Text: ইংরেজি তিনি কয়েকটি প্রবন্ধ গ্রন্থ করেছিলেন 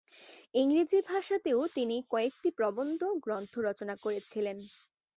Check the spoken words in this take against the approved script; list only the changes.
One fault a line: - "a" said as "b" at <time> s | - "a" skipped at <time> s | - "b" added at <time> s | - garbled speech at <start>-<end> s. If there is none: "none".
- "ভাষাতেও" added at 1.1 s
- "রচনা" added at 3.6 s